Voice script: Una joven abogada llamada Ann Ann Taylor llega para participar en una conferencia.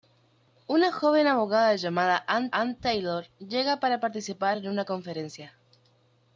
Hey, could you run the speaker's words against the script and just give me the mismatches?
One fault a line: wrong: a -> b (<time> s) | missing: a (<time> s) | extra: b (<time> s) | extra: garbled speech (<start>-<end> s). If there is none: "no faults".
no faults